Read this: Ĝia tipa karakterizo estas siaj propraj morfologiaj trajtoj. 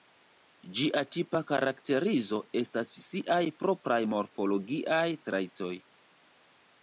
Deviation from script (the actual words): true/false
false